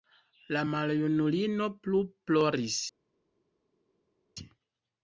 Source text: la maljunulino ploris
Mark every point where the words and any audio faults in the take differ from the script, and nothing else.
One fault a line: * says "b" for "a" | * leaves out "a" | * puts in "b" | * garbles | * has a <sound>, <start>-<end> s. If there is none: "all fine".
* puts in "plu"